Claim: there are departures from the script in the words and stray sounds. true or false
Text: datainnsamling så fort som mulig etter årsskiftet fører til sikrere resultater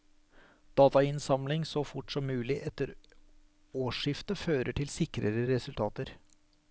false